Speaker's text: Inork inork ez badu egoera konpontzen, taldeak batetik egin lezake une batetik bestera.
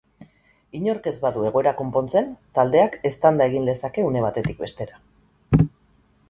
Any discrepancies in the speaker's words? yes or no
yes